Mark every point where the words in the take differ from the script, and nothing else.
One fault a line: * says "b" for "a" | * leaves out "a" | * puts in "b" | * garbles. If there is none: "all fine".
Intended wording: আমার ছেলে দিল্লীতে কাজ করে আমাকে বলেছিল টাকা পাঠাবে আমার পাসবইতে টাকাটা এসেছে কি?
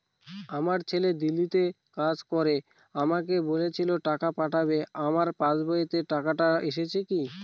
all fine